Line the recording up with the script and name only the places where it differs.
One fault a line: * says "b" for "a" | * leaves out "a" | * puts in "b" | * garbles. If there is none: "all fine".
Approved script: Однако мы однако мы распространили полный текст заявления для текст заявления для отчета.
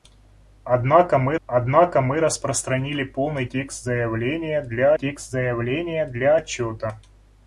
all fine